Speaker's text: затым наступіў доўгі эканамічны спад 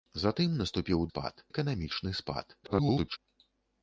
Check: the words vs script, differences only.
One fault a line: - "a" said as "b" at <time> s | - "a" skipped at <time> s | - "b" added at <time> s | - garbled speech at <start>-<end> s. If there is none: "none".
- "доўгі" said as "спад" at 1.1 s
- garbled speech at 2.6-3.2 s